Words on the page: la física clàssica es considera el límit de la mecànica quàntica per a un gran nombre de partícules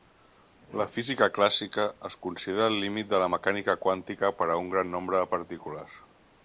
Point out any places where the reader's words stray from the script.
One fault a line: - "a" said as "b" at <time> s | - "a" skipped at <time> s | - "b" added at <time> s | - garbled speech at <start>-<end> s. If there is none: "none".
none